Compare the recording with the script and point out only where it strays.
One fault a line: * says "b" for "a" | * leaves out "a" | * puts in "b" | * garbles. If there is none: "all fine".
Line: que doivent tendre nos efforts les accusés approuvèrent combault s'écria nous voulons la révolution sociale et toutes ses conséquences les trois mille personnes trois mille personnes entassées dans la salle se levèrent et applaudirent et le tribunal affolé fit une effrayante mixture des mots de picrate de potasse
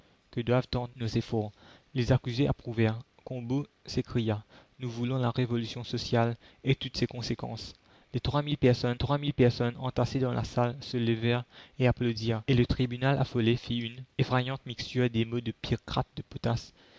all fine